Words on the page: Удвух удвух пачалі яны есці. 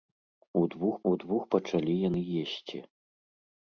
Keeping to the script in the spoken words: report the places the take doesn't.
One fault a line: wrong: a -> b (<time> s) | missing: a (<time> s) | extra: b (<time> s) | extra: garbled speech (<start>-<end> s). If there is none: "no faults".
no faults